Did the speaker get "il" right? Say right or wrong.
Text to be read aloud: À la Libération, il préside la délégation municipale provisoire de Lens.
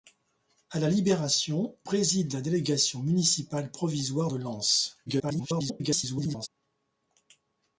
wrong